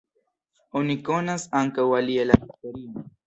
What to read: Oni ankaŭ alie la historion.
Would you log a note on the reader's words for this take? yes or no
yes